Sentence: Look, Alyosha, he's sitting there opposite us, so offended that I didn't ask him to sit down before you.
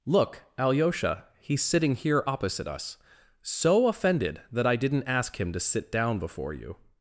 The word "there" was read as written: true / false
false